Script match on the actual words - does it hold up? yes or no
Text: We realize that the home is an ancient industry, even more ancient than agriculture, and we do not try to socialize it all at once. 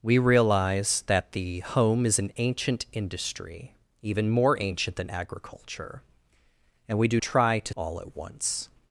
no